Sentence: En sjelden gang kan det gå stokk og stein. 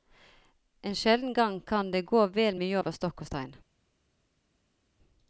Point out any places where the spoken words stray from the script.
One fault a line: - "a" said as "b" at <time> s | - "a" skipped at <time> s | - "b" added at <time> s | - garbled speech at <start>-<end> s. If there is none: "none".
- "vel mye over" added at 2.3 s